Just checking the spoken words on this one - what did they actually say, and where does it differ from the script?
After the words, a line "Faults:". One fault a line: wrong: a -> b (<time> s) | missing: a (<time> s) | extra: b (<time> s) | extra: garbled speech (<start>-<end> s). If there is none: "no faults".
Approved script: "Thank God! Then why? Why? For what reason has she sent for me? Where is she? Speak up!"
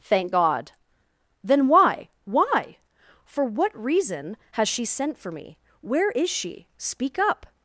"Thank God! Then why? Why? For what reason has she sent for me? Where is she? Speak up!"
Faults:
no faults